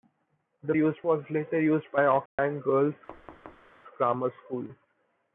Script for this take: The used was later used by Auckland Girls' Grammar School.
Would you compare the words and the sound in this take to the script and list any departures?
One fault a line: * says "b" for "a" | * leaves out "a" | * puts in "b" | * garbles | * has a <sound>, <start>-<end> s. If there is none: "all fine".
* has a dropout, 2.3-2.4 s
* has a thud, 3.1-3.7 s